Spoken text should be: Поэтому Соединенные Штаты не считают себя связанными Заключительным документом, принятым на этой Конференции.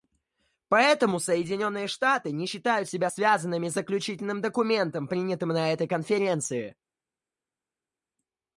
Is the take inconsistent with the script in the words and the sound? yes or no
no